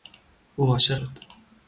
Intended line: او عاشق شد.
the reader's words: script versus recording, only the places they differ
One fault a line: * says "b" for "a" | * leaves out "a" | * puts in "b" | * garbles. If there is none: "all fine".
all fine